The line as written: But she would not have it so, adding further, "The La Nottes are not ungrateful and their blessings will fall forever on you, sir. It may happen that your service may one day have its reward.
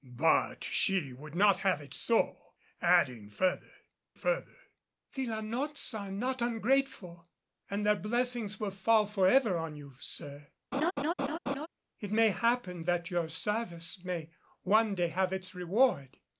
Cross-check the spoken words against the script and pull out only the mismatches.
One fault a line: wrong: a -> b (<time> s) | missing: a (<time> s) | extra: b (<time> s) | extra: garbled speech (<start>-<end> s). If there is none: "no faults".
extra: further (4.1 s)